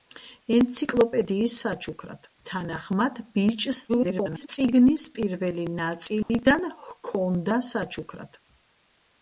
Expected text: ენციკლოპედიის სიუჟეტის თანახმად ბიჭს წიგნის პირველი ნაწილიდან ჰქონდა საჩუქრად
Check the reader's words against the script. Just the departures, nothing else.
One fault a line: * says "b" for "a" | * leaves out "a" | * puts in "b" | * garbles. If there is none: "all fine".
* says "საჩუქრად" for "სიუჟეტის"
* garbles